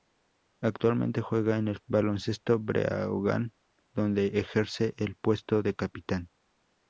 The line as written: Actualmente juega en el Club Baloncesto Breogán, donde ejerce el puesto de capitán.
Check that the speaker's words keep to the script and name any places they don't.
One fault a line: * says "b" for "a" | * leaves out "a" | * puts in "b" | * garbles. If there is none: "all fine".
* leaves out "Club"